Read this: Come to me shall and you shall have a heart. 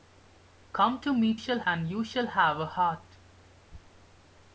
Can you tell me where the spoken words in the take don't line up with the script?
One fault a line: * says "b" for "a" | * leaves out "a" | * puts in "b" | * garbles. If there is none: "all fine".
all fine